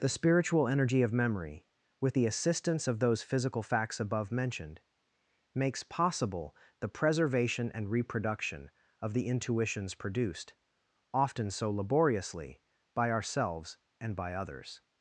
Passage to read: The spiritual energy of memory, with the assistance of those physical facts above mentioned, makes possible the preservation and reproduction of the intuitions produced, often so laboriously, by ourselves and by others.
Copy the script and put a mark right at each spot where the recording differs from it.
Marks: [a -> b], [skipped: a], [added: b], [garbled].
The spiritual energy of memory, with the assistance of those physical facts above mentioned, makes possible the preservation and reproduction of the intuitions produced, often so laboriously, by ourselves and by others.